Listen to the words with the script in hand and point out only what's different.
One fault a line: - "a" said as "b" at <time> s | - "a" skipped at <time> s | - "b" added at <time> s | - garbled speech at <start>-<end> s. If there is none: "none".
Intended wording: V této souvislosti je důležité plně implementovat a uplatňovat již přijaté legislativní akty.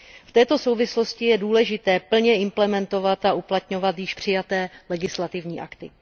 none